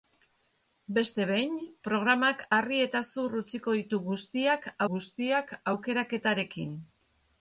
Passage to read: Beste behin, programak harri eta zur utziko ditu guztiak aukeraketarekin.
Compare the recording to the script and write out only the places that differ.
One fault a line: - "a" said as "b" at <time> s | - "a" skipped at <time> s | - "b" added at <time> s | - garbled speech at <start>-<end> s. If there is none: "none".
- "guztiak" added at 4.9 s